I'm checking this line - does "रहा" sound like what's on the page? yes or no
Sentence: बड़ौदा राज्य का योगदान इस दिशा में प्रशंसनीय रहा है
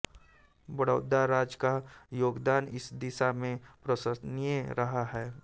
yes